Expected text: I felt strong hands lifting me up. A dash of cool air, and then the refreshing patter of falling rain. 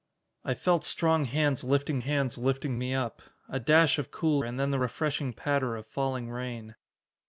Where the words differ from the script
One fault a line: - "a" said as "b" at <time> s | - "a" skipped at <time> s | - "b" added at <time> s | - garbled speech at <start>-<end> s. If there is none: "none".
- "hands lifting" added at 2.0 s
- "air" skipped at 4.4 s